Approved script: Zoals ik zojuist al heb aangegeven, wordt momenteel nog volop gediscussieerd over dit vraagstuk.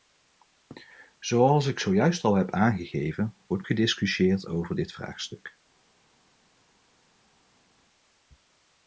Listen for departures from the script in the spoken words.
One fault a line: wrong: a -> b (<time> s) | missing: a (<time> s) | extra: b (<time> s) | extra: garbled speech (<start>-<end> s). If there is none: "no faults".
missing: momenteel nog volop (3.6 s)